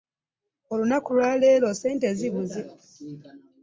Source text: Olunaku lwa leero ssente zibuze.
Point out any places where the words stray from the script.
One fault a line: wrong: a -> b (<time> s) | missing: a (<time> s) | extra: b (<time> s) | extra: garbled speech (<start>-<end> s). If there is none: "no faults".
no faults